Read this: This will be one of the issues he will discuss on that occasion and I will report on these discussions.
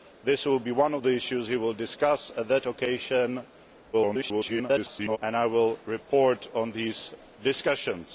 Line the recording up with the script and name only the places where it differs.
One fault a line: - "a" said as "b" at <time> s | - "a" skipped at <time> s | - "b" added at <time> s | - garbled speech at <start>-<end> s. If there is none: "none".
- garbled speech at 3.9-5.2 s